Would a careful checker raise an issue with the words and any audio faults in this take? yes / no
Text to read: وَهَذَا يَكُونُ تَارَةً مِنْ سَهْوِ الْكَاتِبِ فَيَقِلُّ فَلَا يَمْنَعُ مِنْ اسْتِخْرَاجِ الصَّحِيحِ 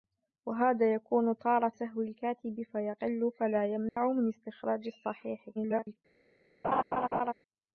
yes